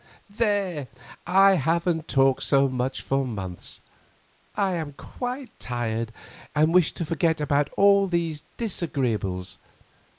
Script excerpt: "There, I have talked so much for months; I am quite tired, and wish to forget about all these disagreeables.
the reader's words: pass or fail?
fail